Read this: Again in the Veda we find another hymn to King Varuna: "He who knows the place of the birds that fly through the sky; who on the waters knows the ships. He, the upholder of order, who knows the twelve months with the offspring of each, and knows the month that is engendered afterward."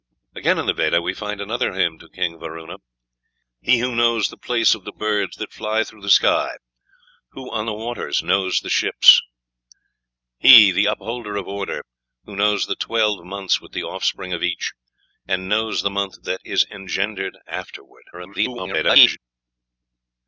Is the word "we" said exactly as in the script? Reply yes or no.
yes